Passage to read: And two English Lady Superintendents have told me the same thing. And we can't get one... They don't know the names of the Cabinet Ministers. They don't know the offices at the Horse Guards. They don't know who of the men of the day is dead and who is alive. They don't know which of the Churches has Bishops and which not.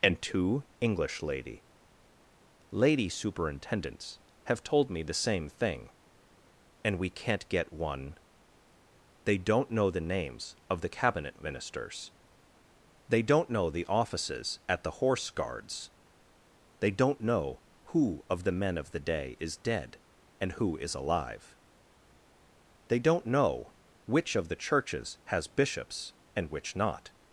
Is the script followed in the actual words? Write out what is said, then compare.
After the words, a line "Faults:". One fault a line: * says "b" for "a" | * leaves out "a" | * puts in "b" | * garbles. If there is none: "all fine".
And two English Lady Lady Superintendents have told me the same thing. And we can't get one... They don't know the names of the Cabinet Ministers. They don't know the offices at the Horse Guards. They don't know who of the men of the day is dead and who is alive. They don't know which of the Churches has Bishops and which not.
Faults:
* puts in "Lady"